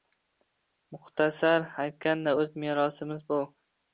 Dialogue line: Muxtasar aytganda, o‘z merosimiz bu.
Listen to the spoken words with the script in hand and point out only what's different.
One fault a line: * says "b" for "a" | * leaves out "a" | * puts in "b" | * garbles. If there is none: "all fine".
all fine